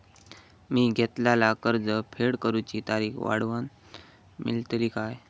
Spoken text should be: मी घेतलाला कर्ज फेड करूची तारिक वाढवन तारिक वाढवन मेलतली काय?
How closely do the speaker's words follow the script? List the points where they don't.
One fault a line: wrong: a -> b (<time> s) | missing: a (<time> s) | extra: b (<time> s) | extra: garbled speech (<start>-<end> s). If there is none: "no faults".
missing: तारिक वाढवन (3.7 s)